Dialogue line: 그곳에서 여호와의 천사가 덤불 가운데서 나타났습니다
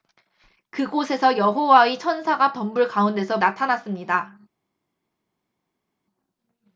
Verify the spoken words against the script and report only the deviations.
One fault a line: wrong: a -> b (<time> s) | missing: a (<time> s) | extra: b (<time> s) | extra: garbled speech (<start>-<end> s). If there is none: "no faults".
no faults